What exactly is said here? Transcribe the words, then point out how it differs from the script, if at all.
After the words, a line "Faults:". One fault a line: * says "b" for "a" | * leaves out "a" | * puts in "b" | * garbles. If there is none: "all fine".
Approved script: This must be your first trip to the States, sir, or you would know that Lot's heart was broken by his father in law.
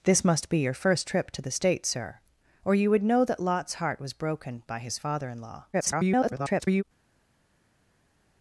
This must be your first trip to the States, sir, or you would know that Lot's heart was broken by his father in law. [garbled]
Faults:
* garbles